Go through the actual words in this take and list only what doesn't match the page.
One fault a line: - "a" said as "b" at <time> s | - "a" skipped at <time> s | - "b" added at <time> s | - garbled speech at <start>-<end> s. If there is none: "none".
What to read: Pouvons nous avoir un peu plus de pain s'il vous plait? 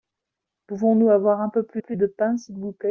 - "plus" added at 1.8 s